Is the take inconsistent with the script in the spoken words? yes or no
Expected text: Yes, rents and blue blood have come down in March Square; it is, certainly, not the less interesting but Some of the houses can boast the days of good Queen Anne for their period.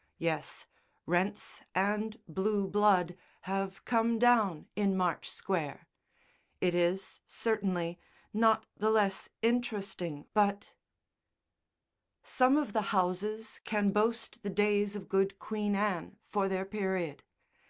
no